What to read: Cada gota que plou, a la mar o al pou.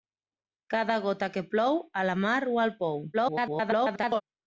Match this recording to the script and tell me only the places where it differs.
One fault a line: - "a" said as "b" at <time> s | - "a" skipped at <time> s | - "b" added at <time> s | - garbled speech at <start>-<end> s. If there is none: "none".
- garbled speech at 3.1-4.2 s